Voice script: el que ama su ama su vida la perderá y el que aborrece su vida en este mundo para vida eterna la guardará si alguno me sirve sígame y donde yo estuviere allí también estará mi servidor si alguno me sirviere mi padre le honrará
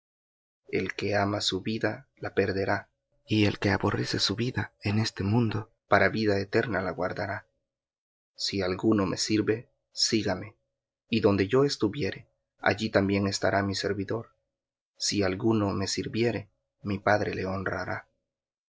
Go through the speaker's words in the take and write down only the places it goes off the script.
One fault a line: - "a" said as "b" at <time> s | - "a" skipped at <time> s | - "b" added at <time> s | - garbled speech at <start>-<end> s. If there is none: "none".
- "ama su" skipped at 1.6 s